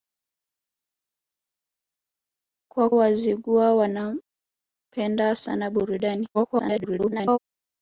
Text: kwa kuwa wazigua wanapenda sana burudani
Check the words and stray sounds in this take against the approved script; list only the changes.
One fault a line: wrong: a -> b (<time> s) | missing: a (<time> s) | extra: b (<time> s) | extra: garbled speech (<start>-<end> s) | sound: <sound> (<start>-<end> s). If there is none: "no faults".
missing: kuwa (2.9 s)
extra: garbled speech (6.3-7.4 s)